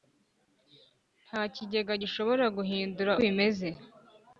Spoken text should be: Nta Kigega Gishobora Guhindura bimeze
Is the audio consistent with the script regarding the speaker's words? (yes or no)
yes